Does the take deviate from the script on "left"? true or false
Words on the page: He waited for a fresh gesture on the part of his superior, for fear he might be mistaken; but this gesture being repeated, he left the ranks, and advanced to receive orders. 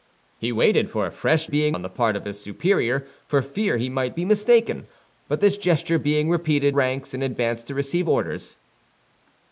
true